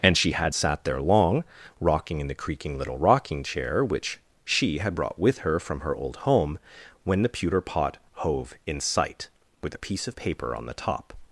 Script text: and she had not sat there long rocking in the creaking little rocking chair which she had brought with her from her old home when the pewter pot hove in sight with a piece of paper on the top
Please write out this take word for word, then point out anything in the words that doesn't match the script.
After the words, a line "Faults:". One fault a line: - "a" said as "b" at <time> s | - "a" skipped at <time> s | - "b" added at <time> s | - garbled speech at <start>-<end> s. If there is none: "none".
and she had sat there long rocking in the creaking little rocking chair which she had brought with her from her old home when the pewter pot hove in sight with a piece of paper on the top
Faults:
- "not" skipped at 0.5 s